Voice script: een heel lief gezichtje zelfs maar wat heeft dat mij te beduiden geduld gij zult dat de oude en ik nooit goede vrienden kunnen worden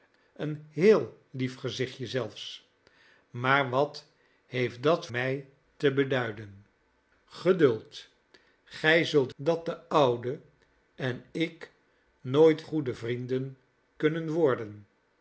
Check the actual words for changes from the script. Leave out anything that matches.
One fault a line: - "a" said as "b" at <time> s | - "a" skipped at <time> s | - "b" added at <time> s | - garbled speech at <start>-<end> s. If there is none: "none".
none